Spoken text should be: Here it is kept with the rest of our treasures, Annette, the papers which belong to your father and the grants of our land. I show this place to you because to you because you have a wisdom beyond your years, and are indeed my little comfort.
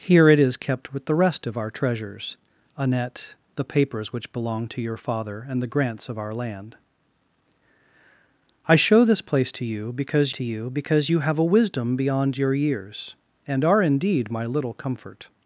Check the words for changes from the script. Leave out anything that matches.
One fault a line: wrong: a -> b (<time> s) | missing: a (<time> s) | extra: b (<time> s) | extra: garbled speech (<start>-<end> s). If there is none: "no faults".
no faults